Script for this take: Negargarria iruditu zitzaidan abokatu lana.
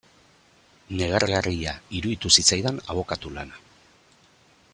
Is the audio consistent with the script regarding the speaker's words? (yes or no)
yes